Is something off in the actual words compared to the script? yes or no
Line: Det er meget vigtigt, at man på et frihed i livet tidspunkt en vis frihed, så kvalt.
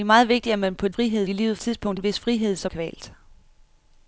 no